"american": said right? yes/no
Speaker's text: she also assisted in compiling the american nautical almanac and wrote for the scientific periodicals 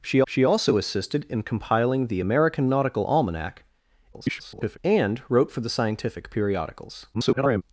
yes